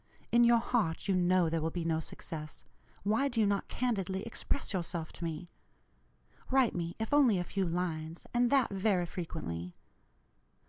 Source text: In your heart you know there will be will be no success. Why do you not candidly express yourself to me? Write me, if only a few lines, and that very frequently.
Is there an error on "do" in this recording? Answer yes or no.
no